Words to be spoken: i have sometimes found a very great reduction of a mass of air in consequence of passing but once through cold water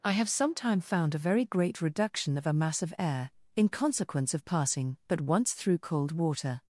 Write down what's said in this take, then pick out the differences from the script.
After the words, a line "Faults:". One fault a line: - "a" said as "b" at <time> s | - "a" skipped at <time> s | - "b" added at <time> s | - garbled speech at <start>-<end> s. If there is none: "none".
i have sometime found a very great reduction of a mass of air in consequence of passing but once through cold water
Faults:
- "sometimes" said as "sometime" at 0.3 s